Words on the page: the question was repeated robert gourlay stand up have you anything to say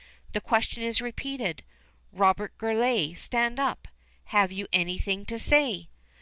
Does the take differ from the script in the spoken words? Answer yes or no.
yes